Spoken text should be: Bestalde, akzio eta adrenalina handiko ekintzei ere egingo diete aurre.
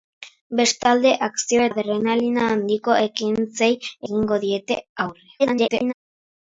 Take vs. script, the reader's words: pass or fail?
fail